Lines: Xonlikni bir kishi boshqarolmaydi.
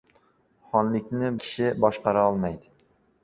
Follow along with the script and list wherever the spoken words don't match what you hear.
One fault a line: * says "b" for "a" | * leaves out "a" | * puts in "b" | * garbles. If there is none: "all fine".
* leaves out "bir"